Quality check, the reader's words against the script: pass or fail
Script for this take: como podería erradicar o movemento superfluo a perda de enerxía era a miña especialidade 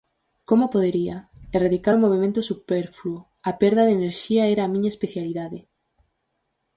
pass